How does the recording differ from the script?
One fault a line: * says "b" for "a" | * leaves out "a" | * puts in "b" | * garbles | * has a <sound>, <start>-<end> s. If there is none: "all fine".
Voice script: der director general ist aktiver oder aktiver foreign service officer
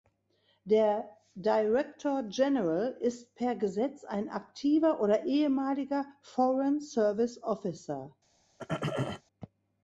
* puts in "per gesetz ein"
* says "ehemaliger" for "aktiver"
* has a throat clearing, 8.6-9.2 s